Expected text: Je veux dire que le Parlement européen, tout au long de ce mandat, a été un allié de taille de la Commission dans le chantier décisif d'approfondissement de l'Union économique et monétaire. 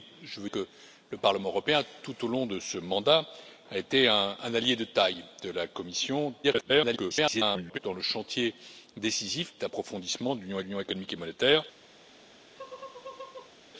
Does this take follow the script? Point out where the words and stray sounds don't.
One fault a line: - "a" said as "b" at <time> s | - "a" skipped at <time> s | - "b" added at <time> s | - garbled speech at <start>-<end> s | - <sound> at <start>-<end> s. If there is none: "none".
- "dire" skipped at 0.5 s
- garbled speech at 6.4-7.8 s
- "l'Union" added at 10.6 s
- laugh at 12.5-13.6 s